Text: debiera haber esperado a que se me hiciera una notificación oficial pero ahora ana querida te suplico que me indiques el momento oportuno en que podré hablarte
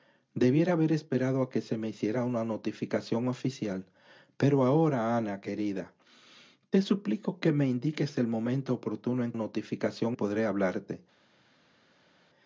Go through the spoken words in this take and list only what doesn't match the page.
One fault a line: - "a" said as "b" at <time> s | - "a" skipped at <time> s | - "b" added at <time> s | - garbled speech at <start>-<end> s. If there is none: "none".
- "que" said as "notificación" at 9.3 s